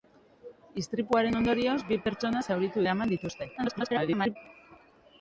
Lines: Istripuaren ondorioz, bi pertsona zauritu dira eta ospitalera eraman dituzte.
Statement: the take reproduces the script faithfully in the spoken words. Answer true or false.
false